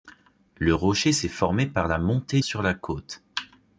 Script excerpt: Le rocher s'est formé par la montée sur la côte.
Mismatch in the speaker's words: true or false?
false